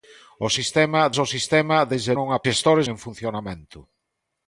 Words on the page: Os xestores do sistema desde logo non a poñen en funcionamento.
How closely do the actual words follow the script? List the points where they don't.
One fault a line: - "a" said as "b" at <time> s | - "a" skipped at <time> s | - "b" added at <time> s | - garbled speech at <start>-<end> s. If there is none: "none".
- "xestores" said as "sistema" at 0.6 s
- "logo" skipped at 2.1 s
- "poñen" said as "xestores" at 2.4 s